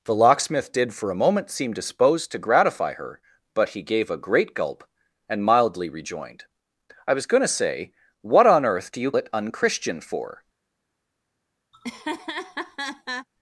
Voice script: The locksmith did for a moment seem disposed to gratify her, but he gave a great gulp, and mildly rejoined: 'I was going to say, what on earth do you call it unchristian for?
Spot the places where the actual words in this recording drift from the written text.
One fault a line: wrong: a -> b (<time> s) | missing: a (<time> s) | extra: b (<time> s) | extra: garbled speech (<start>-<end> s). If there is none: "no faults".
missing: call (9.1 s)